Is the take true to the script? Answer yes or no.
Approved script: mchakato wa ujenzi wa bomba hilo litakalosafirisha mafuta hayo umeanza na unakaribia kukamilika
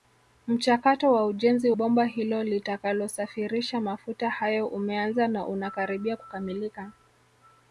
no